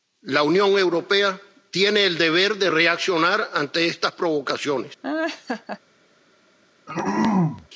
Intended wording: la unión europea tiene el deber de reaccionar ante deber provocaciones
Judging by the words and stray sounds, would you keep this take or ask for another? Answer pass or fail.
fail